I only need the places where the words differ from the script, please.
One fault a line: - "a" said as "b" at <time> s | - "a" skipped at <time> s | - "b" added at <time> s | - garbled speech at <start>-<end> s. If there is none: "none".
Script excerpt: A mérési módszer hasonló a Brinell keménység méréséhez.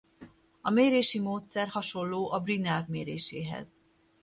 - "keménység" skipped at 2.8 s